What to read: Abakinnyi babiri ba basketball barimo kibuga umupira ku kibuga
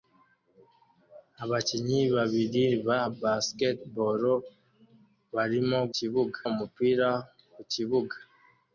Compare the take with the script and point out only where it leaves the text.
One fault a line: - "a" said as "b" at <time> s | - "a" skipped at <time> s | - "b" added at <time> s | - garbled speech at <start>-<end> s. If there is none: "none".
none